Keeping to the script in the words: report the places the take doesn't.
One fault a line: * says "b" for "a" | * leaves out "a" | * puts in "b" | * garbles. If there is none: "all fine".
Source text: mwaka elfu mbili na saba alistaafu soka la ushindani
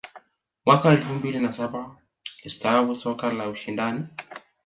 all fine